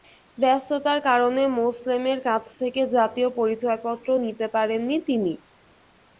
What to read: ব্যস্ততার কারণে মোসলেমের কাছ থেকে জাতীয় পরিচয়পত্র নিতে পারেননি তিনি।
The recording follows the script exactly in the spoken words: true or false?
true